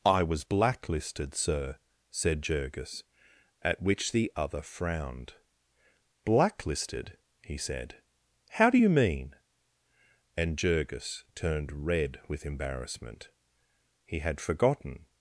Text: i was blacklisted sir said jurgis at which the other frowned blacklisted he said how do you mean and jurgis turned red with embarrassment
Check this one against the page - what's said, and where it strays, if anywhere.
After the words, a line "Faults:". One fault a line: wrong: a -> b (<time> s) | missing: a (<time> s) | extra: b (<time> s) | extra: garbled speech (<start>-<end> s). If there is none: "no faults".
i was blacklisted sir said jurgis at which the other frowned blacklisted he said how do you mean and jurgis turned red with embarrassment he had forgotten
Faults:
extra: he had forgotten (14.0 s)